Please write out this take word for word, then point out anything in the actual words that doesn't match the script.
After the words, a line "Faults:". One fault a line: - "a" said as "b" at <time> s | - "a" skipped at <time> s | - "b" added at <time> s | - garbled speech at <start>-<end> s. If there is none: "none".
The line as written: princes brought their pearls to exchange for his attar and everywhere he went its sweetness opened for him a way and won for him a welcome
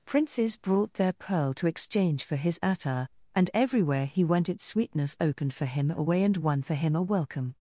princes brought their pearl to exchange for his attar and everywhere he went its sweetness opened for him a way and won for him a welcome
Faults:
- "pearls" said as "pearl" at 1.1 s